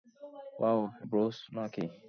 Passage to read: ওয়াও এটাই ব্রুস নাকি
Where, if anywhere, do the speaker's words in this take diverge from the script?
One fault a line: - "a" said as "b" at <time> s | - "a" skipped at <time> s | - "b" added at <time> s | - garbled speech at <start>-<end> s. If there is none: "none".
- "এটাই" skipped at 0.8 s